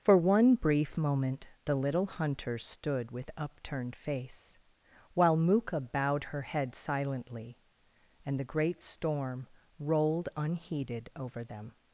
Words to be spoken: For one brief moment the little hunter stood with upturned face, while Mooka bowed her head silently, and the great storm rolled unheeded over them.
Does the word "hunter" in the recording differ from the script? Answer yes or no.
no